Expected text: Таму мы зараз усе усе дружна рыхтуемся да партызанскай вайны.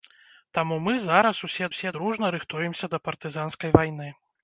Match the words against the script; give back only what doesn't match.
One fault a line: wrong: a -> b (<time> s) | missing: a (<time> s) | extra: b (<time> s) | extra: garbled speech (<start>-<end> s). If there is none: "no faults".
no faults